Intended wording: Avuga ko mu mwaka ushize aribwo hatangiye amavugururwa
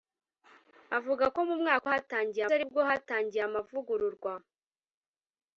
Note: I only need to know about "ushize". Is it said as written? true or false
false